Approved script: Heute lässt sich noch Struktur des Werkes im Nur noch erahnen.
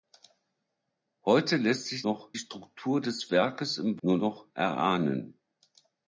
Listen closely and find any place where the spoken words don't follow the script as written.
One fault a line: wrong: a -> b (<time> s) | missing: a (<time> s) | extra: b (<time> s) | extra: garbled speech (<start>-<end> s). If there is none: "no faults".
no faults